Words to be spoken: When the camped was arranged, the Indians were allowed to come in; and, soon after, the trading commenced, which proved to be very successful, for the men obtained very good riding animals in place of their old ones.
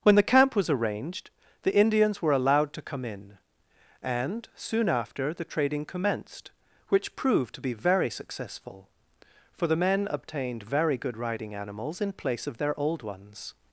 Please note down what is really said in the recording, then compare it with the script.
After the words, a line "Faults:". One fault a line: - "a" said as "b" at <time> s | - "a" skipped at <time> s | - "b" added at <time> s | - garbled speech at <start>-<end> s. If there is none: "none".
When the camp was arranged, the Indians were allowed to come in; and, soon after, the trading commenced, which proved to be very successful, for the men obtained very good riding animals in place of their old ones.
Faults:
- "camped" said as "camp" at 0.2 s